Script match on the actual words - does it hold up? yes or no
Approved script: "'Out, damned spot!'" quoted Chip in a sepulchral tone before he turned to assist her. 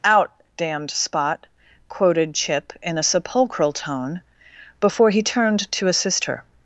yes